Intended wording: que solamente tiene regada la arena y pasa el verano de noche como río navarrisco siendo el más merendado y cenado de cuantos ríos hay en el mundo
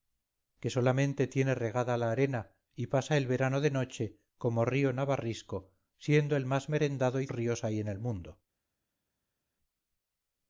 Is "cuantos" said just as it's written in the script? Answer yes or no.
no